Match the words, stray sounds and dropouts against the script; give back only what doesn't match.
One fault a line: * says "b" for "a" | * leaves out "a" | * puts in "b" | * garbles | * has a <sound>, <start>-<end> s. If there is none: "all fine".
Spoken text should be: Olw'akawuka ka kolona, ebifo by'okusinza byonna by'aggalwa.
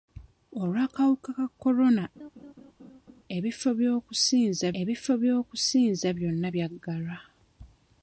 * has a laugh, 2.2-3.2 s
* puts in "ebifo by'okusinza"